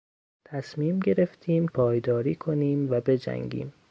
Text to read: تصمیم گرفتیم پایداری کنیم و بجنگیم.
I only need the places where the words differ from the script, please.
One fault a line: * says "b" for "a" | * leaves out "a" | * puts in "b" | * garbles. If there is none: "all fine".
all fine